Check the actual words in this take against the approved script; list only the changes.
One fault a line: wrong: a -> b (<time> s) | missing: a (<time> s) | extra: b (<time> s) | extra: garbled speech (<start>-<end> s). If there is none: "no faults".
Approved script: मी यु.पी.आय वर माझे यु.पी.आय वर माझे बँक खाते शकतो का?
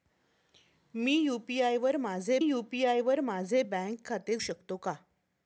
no faults